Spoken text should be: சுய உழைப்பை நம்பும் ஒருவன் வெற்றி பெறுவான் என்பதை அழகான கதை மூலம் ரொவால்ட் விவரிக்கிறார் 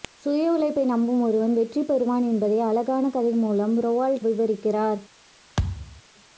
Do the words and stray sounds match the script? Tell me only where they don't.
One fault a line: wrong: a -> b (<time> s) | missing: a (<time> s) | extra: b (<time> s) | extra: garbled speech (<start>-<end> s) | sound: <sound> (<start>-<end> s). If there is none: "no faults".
sound: thud (5.6-6.0 s)